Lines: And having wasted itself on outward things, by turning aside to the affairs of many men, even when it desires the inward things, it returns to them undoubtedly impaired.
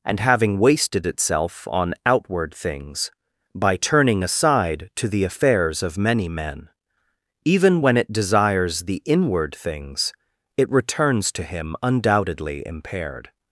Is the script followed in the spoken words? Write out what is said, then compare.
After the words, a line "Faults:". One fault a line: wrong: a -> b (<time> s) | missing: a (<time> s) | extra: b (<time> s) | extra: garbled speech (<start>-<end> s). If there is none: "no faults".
And having wasted itself on outward things, by turning aside to the affairs of many men, even when it desires the inward things, it returns to him undoubtedly impaired.
Faults:
wrong: them -> him (11.4 s)